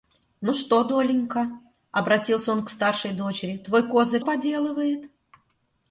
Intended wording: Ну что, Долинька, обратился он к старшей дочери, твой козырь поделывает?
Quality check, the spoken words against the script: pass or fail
pass